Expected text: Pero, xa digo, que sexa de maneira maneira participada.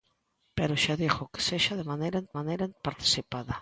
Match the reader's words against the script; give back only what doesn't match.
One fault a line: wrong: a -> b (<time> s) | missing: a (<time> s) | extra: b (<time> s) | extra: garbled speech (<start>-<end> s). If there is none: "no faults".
no faults